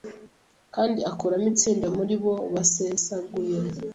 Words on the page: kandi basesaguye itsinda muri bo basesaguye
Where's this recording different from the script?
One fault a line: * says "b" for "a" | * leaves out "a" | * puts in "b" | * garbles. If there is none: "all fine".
* says "akuramo" for "basesaguye"